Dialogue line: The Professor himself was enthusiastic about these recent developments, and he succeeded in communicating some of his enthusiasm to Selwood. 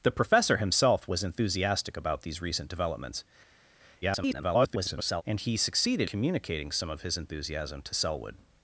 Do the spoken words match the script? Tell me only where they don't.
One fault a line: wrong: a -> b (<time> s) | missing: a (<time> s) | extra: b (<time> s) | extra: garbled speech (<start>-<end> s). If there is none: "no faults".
extra: garbled speech (4.0-5.2 s)
missing: in (6.1 s)